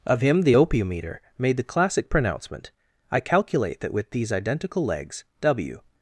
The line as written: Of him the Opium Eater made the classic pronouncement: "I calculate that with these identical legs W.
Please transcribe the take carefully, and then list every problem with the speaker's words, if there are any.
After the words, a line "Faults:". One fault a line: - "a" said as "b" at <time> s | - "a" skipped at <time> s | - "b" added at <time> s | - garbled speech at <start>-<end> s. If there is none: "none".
Of him the Opium Eater made the classic pronouncement: "I calculate that with these identical legs W.
Faults:
none